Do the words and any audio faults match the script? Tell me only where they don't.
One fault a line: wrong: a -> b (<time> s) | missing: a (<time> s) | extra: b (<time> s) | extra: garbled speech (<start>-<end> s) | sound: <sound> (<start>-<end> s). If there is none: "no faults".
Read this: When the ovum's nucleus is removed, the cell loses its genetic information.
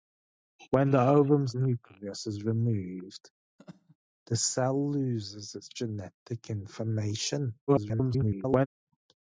sound: laugh (3.6-4.0 s)
extra: garbled speech (7.7-8.7 s)